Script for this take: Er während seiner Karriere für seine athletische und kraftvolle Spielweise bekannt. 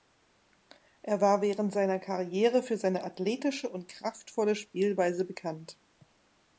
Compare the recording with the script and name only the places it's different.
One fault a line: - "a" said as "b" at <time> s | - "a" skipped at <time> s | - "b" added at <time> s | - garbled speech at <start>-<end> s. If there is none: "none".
- "war" added at 1.2 s